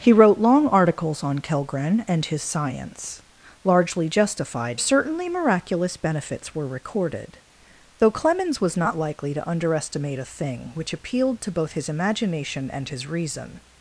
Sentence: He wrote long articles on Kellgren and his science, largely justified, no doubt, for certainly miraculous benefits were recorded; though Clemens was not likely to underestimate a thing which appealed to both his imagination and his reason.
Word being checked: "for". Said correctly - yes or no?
no